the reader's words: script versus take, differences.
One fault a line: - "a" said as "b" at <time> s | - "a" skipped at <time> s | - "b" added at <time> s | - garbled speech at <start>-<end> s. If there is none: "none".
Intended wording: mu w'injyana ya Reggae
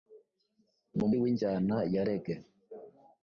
none